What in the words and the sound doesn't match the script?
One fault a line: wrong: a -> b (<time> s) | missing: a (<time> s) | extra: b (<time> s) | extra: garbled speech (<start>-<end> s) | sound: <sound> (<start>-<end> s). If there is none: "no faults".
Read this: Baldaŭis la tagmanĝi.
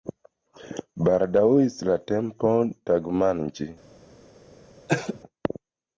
extra: tempo (2.1 s)
sound: cough (4.9-5.2 s)